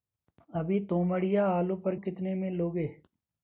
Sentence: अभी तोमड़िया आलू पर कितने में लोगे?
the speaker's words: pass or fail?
pass